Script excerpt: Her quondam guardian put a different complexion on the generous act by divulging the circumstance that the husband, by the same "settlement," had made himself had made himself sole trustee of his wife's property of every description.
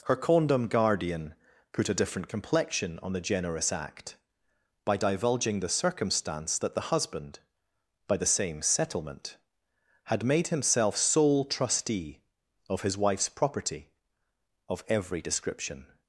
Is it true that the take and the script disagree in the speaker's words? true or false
true